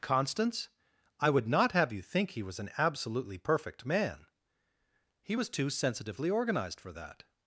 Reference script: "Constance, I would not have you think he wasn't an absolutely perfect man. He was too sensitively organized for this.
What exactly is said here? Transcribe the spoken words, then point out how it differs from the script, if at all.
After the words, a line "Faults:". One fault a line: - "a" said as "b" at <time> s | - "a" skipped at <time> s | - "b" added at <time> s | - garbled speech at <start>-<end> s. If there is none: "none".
"Constance, I would not have you think he was an absolutely perfect man. He was too sensitively organized for that.
Faults:
- "wasn't" said as "was" at 2.4 s
- "this" said as "that" at 6.9 s